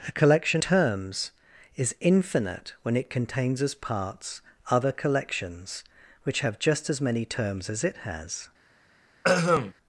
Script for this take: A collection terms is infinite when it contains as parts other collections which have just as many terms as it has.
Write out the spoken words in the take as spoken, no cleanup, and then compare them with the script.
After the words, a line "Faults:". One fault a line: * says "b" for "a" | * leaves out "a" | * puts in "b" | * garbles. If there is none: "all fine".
A collection terms is infinite when it contains as parts other collections which have just as many terms as it has.
Faults:
all fine